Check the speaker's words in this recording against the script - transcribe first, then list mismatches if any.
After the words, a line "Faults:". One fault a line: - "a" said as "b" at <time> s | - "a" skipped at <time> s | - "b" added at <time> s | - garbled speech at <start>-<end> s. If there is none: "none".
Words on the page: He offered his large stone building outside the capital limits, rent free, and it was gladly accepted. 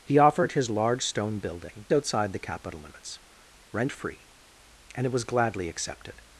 He offered his large stone building outside the capital limits, rent free, and it was gladly accepted.
Faults:
none